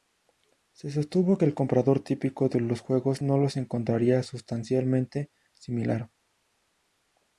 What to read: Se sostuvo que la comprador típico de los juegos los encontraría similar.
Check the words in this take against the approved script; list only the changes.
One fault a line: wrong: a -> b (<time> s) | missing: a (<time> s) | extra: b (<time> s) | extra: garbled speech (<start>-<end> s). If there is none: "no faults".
wrong: la -> el (1.4 s)
extra: no (3.2 s)
extra: sustancialmente (4.2 s)